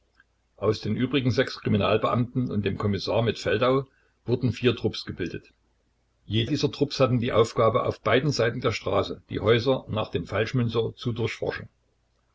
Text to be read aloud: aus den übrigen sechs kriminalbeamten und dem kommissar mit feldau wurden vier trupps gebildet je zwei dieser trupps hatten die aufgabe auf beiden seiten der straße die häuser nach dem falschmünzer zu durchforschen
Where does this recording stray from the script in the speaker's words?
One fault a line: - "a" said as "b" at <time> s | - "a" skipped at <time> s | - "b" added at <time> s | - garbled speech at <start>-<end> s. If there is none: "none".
- "zwei" skipped at 6.5 s